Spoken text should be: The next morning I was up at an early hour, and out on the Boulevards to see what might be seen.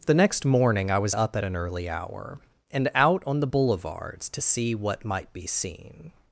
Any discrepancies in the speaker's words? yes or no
no